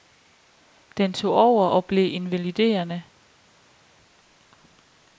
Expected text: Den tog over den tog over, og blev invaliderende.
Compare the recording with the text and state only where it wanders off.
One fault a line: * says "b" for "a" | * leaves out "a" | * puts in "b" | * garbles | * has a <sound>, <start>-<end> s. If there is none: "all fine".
* leaves out "den tog over"